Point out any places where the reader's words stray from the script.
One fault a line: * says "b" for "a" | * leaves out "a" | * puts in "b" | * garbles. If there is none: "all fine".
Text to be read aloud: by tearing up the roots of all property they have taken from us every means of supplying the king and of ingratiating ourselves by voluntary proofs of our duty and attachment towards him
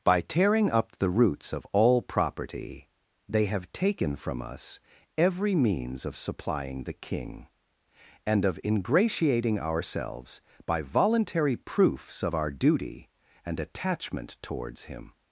all fine